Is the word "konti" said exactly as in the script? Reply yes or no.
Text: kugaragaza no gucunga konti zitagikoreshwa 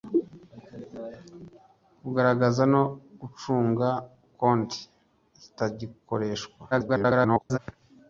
yes